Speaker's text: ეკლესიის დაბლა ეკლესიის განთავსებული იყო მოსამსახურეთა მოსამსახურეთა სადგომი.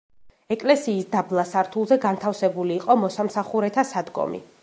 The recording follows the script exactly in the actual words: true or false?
false